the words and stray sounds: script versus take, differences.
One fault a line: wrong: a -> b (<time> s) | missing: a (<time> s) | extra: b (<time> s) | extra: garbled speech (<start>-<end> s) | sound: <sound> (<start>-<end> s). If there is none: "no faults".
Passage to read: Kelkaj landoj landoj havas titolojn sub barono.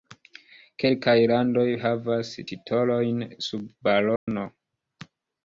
missing: landoj (1.6 s)
sound: dropout (4.2-4.3 s)